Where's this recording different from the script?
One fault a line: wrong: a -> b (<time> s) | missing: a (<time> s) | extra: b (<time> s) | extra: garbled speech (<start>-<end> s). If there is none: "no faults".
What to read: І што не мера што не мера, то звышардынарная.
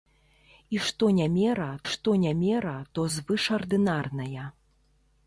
no faults